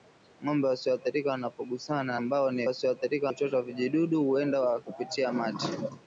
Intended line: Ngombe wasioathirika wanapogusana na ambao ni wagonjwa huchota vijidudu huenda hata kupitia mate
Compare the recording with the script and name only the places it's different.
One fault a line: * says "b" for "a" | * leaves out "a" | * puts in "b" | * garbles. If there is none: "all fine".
* leaves out "na"
* says "wasioathirika" for "wagonjwa"
* leaves out "hata"